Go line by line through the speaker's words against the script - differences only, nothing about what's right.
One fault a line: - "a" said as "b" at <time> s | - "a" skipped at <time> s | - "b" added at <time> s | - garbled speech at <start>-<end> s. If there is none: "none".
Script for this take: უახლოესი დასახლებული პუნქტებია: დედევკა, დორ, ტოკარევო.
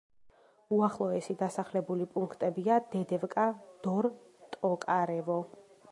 none